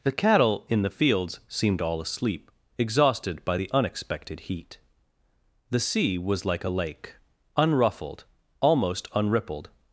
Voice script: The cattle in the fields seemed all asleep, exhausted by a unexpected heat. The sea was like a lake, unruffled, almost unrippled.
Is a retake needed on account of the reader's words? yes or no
yes